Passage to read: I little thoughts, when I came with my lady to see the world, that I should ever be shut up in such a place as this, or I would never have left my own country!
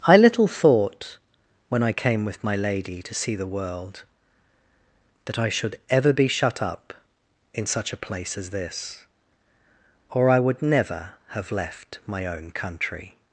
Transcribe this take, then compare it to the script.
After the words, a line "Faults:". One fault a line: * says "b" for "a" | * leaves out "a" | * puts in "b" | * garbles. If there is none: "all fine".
I little thought, when I came with my lady to see the world, that I should ever be shut up in such a place as this, or I would never have left my own country!
Faults:
* says "thought" for "thoughts"